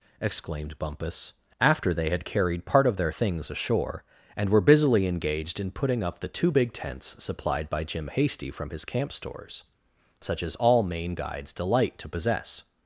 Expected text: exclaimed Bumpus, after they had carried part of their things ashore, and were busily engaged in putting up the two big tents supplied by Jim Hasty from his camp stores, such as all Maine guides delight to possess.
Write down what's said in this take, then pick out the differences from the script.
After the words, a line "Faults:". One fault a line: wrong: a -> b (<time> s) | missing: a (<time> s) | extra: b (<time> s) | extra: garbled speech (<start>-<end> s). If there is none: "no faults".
exclaimed Bumpus, after they had carried part of their things ashore, and were busily engaged in putting up the two big tents supplied by Jim Hasty from his camp stores, such as all Maine guides delight to possess.
Faults:
no faults